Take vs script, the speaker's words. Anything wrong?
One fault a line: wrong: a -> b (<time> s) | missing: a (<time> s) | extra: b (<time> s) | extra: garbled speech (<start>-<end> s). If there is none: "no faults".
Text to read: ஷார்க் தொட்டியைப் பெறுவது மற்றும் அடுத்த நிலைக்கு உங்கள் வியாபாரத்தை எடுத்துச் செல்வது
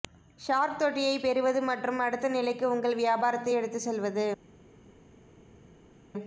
no faults